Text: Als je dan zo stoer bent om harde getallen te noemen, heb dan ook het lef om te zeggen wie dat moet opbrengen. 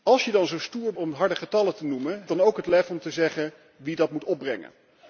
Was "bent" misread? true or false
true